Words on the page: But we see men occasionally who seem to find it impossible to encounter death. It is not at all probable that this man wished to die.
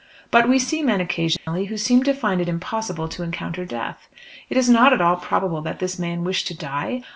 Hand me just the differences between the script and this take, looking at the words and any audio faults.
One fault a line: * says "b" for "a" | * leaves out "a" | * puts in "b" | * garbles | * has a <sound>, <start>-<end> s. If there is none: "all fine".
* has a dropout, 1.4-1.5 s